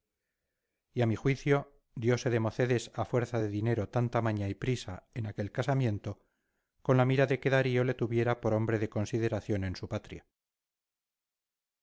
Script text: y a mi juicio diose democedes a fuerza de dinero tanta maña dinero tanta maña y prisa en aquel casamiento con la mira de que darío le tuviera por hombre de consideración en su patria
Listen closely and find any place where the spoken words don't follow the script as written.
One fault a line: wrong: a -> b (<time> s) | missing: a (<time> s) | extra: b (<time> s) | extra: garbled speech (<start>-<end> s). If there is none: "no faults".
missing: dinero tanta maña (4.5 s)